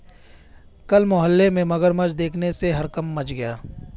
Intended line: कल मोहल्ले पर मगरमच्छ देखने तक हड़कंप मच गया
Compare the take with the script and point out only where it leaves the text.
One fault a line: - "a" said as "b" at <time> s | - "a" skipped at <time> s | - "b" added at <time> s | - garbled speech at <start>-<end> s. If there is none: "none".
- "पर" said as "में" at 1.5 s
- "तक" said as "से" at 2.5 s